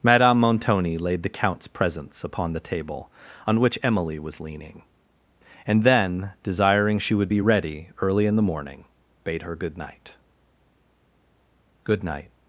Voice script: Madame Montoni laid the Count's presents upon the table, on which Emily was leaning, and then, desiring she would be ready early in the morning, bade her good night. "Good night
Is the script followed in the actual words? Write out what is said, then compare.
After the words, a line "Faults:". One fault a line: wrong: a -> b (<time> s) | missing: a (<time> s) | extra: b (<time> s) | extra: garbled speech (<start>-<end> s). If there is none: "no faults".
Madame Montoni laid the Count's presents upon the table, on which Emily was leaning, and then, desiring she would be ready early in the morning, bade her good night. "Good night
Faults:
no faults